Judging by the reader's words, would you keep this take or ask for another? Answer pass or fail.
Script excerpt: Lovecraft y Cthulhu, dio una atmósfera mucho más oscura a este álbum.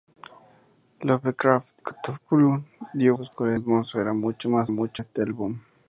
fail